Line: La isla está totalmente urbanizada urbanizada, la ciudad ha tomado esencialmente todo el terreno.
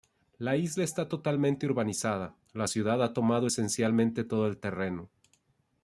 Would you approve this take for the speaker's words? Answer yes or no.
no